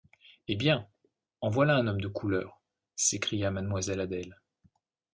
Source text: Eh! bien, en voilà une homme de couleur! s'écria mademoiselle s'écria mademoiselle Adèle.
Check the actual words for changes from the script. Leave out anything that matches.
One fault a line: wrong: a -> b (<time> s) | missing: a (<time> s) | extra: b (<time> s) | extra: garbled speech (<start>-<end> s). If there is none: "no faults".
wrong: une -> un (1.8 s)
missing: s'écria mademoiselle (4.0 s)